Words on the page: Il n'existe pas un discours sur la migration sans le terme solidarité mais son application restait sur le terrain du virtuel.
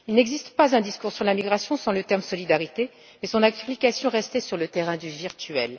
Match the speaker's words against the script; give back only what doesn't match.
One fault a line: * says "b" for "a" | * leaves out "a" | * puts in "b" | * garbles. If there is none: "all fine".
all fine